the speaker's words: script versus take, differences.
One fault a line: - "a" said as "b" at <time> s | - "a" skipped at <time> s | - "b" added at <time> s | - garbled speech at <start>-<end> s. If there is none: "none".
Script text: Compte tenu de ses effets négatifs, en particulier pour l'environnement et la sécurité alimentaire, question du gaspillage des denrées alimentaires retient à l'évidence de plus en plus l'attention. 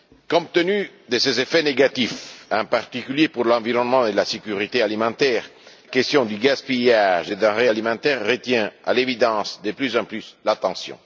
none